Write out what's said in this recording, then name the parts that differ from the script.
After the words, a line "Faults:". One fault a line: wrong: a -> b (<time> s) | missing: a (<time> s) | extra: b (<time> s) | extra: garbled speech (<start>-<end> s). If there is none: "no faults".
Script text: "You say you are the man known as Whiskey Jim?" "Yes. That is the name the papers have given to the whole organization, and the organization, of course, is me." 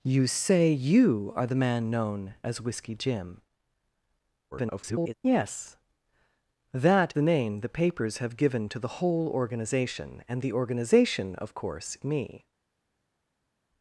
"You say you are the man known as Whiskey Jim?" [garbled] "Yes. That the name the papers have given to the whole organization, and the organization, of course, me."
Faults:
extra: garbled speech (4.5-5.1 s)
missing: is (7.1 s)
missing: is (12.0 s)